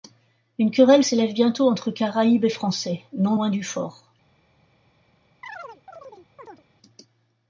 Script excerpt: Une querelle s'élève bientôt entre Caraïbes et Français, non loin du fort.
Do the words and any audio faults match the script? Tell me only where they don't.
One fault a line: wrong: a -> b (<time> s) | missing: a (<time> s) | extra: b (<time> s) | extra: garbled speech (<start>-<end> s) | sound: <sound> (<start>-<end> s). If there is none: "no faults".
sound: chirp (5.4-6.6 s)